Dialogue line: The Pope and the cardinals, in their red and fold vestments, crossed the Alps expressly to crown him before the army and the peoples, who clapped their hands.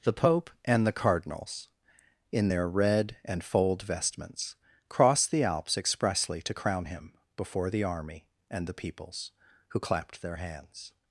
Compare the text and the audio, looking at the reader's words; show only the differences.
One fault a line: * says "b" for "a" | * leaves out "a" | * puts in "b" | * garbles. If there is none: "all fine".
all fine